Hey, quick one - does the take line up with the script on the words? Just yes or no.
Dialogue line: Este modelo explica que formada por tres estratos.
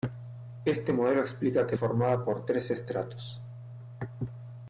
yes